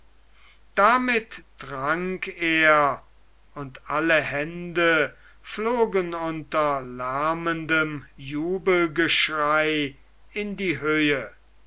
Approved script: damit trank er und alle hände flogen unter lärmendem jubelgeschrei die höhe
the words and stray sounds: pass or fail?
fail